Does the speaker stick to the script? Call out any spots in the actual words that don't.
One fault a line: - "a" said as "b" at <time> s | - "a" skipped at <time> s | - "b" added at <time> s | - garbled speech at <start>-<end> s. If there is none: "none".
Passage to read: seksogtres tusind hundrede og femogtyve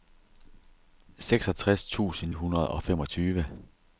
none